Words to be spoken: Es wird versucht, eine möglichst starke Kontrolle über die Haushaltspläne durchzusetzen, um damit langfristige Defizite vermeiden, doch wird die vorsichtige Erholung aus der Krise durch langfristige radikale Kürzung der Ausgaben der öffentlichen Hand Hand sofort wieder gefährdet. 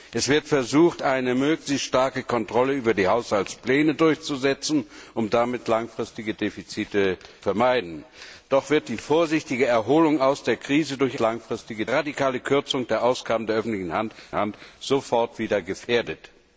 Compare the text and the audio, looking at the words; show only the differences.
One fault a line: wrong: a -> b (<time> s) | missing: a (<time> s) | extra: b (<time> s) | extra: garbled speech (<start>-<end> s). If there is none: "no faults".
no faults